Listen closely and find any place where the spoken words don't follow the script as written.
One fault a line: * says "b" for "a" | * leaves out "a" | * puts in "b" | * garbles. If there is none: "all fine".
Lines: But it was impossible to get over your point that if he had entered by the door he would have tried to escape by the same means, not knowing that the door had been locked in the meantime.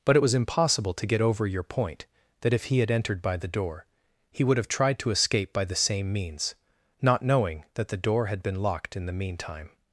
all fine